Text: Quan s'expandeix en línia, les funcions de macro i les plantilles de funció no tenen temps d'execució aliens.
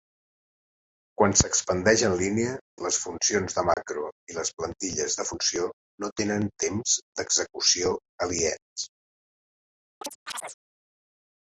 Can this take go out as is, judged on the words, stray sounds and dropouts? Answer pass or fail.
fail